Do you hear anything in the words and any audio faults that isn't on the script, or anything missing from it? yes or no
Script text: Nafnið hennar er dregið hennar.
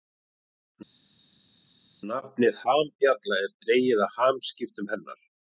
yes